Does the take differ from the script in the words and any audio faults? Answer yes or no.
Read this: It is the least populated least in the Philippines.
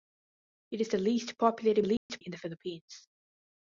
yes